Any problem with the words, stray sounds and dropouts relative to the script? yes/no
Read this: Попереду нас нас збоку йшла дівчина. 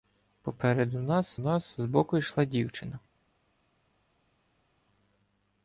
no